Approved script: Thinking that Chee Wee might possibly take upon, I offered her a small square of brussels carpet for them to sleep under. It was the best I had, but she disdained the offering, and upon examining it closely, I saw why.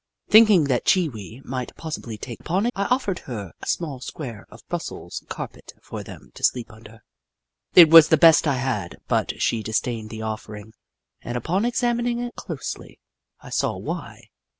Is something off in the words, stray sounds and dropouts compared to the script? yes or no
no